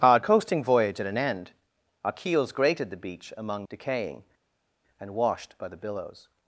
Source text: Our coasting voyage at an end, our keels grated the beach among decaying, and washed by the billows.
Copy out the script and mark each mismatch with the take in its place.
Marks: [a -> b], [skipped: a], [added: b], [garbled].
Our coasting voyage at an end, our keels grated the beach among decaying, and washed by the billows.